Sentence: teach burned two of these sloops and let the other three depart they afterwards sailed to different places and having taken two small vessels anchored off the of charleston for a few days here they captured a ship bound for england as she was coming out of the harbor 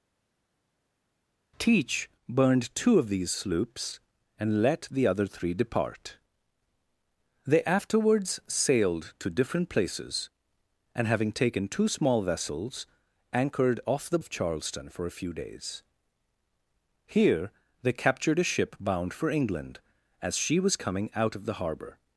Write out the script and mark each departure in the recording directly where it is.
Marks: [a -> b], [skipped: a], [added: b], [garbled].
teach burned two of these sloops and let the other three depart they afterwards sailed to different places and having taken two small vessels anchored off the of charleston for a few days here they captured a ship bound for england as she was coming out of the harbor